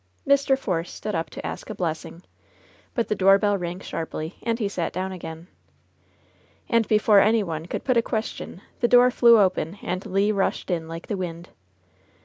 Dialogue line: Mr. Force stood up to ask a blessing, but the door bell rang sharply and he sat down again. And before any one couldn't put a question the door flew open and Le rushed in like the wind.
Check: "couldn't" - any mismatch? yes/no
yes